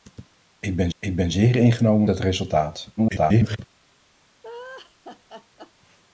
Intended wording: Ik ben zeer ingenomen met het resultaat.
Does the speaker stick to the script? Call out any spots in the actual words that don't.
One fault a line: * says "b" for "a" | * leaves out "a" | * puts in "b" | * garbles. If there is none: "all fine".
* puts in "ik ben"
* leaves out "met"
* garbles